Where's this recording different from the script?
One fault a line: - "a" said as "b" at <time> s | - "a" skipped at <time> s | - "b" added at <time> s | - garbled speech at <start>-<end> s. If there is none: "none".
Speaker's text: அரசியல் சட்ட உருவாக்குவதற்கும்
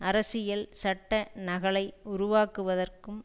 - "நகலை" added at 1.4 s